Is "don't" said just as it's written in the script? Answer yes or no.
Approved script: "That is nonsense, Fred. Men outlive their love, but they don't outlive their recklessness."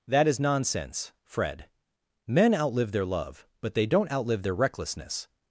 yes